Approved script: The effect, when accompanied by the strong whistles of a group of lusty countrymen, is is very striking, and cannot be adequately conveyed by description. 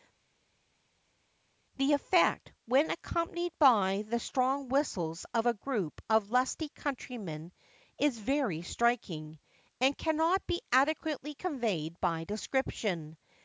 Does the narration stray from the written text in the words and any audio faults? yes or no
yes